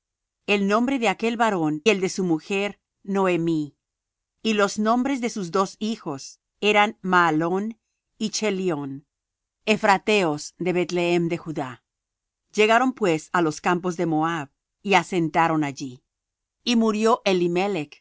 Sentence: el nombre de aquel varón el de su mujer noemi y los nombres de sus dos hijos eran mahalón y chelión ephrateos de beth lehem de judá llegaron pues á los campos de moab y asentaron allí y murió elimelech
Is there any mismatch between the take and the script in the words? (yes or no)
no